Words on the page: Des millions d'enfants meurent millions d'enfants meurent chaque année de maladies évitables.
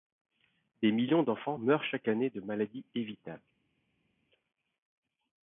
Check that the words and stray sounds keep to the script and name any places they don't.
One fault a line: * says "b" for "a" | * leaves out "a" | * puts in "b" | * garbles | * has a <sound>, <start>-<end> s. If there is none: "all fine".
* leaves out "millions d'enfants meurent"